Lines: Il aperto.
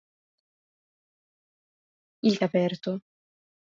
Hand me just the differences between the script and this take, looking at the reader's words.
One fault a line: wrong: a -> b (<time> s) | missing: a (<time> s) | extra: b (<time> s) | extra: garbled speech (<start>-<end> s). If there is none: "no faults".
no faults